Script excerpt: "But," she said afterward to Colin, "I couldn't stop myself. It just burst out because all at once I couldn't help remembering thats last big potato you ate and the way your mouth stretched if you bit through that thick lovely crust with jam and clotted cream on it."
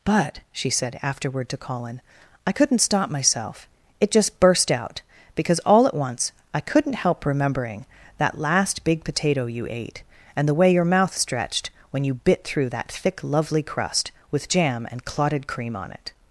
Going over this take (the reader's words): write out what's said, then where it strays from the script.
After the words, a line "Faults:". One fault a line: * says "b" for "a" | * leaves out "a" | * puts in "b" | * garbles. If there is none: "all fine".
"But," she said afterward to Colin, "I couldn't stop myself. It just burst out because all at once I couldn't help remembering that last big potato you ate and the way your mouth stretched when you bit through that thick lovely crust with jam and clotted cream on it."
Faults:
* says "that" for "thats"
* says "when" for "if"